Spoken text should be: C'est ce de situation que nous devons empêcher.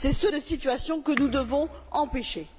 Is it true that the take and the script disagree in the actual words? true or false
false